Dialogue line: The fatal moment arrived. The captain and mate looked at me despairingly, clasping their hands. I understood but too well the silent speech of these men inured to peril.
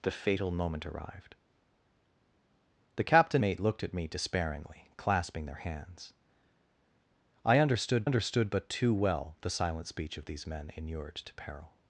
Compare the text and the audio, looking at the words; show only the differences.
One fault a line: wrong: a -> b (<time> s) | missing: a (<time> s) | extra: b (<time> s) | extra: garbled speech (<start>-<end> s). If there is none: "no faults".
missing: and (3.4 s)
extra: understood (8.0 s)